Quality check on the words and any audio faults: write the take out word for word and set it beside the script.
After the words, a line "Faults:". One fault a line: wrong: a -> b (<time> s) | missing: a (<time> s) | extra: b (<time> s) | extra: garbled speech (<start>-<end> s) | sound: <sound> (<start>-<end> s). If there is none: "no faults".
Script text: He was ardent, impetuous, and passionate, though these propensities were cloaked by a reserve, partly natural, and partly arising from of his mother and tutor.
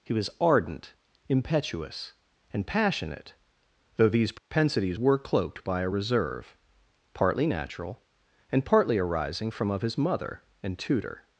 He was ardent, impetuous, and passionate, though these propensities were cloaked by a reserve, partly natural, and partly arising from of his mother and tutor.
Faults:
sound: dropout (4.4-4.5 s)